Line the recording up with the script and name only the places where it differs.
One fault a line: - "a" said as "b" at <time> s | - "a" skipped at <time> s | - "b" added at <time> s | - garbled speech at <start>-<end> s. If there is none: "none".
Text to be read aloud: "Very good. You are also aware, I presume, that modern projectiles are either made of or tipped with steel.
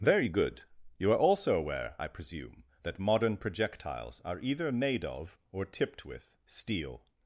none